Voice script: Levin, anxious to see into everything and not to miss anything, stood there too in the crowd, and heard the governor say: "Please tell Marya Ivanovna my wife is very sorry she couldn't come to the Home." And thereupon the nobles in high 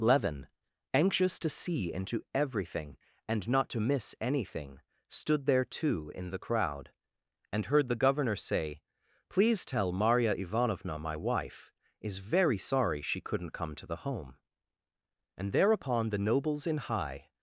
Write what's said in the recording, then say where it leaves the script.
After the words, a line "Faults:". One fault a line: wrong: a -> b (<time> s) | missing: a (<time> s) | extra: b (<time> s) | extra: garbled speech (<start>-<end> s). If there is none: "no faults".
Levin, anxious to see into everything and not to miss anything, stood there too in the crowd, and heard the governor say: "Please tell Marya Ivanovna my wife is very sorry she couldn't come to the Home." And thereupon the nobles in high
Faults:
no faults